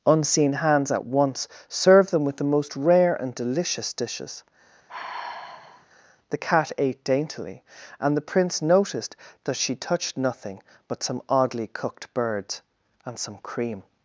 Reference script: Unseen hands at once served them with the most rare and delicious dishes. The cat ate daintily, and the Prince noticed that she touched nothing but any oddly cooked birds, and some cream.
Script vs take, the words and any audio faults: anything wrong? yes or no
yes